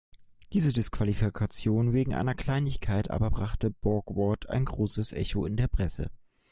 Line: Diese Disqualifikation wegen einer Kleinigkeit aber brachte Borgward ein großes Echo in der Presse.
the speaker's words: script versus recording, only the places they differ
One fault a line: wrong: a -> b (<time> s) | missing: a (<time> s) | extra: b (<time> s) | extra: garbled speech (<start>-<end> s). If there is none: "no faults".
no faults